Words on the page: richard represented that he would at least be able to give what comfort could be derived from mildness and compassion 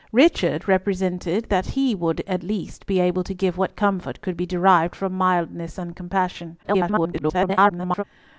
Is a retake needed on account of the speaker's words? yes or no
yes